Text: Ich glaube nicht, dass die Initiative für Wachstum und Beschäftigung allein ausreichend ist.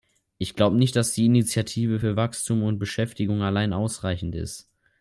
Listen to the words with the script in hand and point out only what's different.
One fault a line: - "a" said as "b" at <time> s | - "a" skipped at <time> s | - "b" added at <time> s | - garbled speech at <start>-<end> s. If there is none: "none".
none